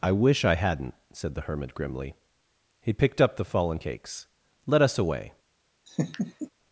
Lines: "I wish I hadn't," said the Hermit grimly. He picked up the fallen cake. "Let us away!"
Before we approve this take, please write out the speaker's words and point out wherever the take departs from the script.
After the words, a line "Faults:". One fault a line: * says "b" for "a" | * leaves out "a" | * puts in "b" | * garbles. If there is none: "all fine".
"I wish I hadn't," said the Hermit grimly. He picked up the fallen cakes. "Let us away!"
Faults:
* says "cakes" for "cake"